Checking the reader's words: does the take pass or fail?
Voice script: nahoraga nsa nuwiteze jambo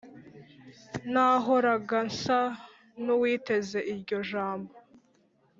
fail